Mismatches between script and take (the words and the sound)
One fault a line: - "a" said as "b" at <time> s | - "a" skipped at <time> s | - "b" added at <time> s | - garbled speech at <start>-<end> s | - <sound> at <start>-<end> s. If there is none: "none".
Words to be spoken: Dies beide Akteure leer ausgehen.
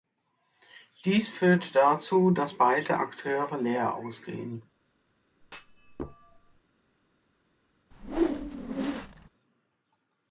- "führt dazu dass" added at 1.3 s
- thud at 5.4-6.6 s
- whoosh at 7.9-9.3 s